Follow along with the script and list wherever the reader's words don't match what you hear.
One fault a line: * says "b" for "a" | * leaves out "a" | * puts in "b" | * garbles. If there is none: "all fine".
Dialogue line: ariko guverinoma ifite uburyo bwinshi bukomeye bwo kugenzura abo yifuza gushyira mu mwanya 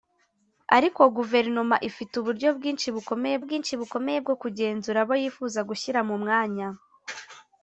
* puts in "bwinshi bukomeye"